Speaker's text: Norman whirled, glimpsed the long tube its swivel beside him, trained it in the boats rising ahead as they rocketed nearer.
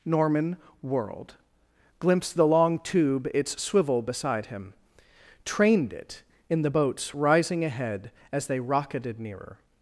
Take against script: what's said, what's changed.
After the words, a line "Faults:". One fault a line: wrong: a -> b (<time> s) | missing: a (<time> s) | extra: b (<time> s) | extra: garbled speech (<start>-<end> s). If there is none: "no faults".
Norman whirled, glimpsed the long tube its swivel beside him, trained it in the boats rising ahead as they rocketed nearer.
Faults:
no faults